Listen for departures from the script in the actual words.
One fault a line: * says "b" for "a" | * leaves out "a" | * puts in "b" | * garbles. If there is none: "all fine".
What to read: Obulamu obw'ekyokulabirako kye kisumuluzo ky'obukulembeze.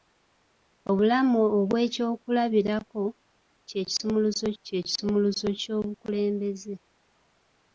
* puts in "kye kisumuluzo"